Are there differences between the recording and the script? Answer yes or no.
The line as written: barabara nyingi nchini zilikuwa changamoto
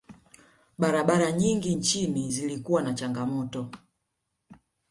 yes